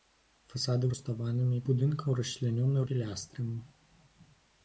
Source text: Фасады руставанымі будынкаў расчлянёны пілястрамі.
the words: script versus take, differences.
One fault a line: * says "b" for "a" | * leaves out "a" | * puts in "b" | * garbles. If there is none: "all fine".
all fine